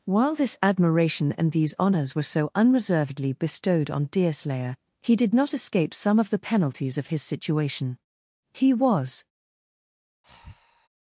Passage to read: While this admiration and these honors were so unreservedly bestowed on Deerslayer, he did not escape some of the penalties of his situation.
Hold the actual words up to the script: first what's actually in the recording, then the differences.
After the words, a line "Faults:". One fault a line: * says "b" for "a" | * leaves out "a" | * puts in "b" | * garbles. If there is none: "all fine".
While this admiration and these honors were so unreservedly bestowed on Deerslayer, he did not escape some of the penalties of his situation. He was
Faults:
* puts in "He was"